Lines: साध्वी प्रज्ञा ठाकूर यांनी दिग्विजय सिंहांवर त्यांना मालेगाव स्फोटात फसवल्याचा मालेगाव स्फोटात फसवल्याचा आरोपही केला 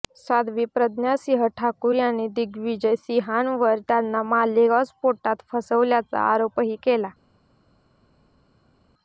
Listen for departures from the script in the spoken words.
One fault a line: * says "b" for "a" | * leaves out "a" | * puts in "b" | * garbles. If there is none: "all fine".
* puts in "सिंह"
* leaves out "मालेगाव स्फोटात फसवल्याचा"